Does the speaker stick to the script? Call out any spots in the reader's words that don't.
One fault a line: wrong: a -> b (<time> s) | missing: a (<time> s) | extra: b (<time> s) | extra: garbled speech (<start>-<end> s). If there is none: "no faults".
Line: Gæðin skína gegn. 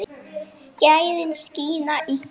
extra: í (2.0 s)